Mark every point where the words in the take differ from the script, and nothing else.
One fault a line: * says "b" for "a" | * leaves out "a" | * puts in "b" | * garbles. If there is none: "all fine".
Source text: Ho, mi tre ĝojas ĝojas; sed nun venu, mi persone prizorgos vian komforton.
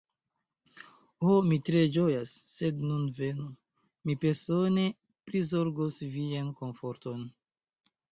* leaves out "ĝojas"